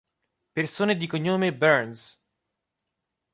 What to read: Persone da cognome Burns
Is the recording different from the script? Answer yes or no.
yes